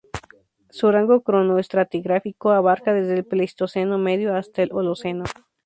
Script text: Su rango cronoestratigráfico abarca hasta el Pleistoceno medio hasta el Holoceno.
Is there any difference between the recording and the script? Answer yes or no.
yes